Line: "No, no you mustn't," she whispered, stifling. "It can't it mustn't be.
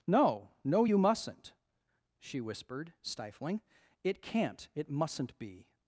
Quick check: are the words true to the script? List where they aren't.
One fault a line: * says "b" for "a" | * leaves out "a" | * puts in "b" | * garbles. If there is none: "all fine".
all fine